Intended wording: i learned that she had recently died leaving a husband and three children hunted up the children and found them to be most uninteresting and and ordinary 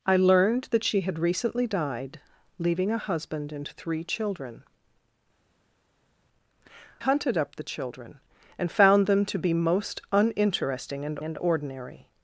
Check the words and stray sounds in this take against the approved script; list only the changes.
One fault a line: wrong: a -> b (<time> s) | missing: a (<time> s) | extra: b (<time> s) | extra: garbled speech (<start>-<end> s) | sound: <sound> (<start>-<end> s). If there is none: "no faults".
no faults